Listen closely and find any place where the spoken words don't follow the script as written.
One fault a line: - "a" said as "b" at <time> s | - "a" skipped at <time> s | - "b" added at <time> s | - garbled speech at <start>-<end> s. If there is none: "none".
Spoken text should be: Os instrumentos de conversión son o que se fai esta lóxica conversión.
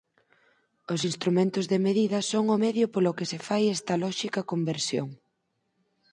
- "conversión" said as "medida" at 1.9 s
- "medio polo" added at 2.6 s